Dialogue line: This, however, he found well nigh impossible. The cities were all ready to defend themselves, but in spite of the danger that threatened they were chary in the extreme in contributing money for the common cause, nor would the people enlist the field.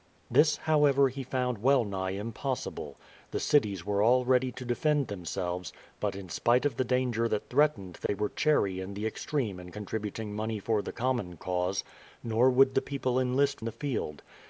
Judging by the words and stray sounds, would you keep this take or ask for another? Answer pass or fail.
fail